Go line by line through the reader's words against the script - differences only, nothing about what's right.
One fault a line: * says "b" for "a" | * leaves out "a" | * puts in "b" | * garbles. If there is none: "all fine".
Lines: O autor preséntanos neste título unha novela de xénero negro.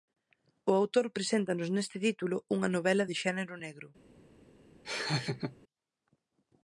all fine